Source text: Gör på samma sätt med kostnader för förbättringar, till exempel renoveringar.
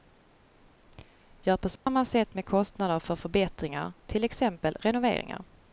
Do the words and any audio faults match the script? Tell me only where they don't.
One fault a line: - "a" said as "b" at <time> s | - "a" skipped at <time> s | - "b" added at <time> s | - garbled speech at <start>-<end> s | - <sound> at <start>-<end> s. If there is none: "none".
- dropout at 1.8-1.9 s